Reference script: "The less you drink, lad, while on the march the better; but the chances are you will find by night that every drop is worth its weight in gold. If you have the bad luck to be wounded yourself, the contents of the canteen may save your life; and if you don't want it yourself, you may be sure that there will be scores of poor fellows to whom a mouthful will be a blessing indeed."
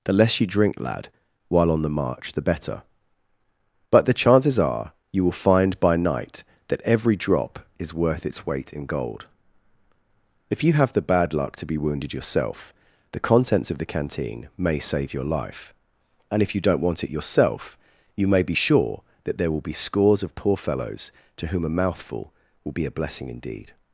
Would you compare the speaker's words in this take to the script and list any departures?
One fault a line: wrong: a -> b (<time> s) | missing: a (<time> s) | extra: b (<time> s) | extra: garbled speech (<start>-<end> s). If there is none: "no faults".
no faults